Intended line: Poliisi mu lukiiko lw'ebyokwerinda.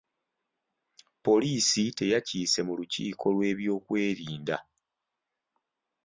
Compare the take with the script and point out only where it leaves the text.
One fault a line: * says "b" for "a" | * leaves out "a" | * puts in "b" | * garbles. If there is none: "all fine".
* puts in "teyakiise"